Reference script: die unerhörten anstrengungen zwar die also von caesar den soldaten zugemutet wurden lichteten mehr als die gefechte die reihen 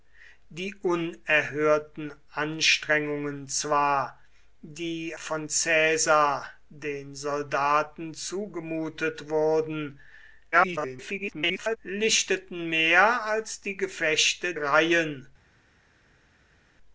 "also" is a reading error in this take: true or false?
true